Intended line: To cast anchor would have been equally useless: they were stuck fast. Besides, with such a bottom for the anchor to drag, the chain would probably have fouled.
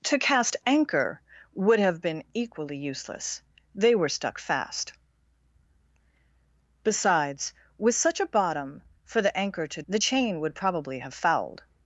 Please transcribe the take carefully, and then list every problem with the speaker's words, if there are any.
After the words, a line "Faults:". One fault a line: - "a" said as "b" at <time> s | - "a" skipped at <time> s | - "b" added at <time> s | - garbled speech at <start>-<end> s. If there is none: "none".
To cast anchor would have been equally useless: they were stuck fast. Besides, with such a bottom for the anchor to the chain would probably have fouled.
Faults:
- "drag" skipped at 9.8 s